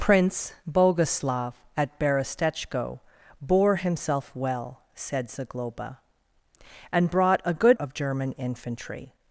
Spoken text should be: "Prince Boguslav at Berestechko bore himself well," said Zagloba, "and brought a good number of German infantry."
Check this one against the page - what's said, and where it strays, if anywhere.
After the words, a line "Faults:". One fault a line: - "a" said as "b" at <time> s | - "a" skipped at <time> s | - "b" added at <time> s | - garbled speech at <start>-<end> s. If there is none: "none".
"Prince Boguslav at Berestechko bore himself well," said Zagloba, "and brought a good of German infantry."
Faults:
- "number" skipped at 7.8 s